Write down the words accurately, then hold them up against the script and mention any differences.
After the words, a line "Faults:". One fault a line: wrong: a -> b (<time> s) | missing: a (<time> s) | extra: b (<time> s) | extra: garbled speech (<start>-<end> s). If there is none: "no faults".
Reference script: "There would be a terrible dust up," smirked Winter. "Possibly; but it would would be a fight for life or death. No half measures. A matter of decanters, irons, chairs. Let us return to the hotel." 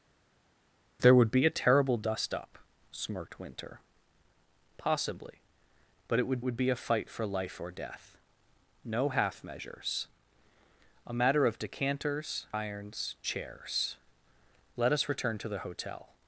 "There would be a terrible dust up," smirked Winter. "Possibly; but it would would be a fight for life or death. No half measures. A matter of decanters, irons, chairs. Let us return to the hotel."
Faults:
no faults